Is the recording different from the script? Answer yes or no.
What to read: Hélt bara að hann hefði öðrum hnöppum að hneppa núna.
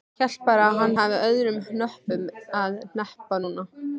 no